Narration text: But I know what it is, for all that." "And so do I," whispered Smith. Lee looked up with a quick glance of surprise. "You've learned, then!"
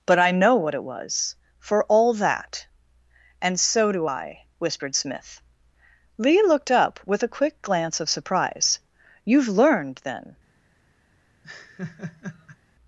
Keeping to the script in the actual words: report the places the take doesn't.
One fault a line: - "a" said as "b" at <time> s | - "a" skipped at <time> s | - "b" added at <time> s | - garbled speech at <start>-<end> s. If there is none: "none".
- "is" said as "was" at 0.8 s